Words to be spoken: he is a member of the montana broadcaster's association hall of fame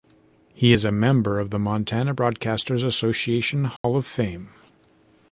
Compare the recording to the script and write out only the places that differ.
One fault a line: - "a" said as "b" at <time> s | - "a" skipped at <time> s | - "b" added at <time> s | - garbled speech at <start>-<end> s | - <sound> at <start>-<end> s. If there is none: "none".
- dropout at 3.8-3.8 s